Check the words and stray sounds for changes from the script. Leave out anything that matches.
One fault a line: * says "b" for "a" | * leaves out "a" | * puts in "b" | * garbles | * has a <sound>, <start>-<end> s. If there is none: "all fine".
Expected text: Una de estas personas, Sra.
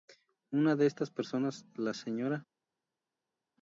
* puts in "la"